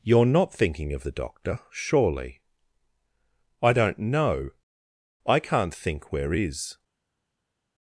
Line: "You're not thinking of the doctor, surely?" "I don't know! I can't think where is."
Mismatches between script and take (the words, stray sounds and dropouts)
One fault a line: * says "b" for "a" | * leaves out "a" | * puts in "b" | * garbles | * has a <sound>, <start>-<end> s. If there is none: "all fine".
all fine